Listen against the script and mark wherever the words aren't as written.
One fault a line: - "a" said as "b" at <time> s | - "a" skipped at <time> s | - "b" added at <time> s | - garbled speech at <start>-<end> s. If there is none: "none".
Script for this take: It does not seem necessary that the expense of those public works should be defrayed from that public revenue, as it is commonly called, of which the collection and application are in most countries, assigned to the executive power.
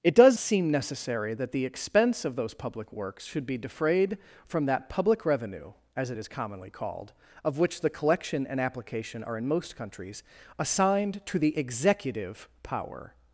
- "not" skipped at 0.4 s